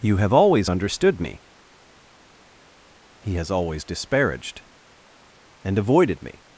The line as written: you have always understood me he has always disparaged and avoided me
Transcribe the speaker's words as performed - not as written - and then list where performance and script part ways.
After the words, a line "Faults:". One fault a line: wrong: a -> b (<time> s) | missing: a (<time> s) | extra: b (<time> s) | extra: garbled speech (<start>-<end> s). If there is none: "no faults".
you have always understood me he has always disparaged and avoided me
Faults:
no faults